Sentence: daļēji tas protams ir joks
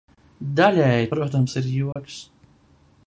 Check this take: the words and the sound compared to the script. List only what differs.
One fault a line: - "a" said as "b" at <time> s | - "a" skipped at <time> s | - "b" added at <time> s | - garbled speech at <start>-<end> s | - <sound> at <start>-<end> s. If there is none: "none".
- "tas" skipped at 1.1 s
- dropout at 1.9-2.0 s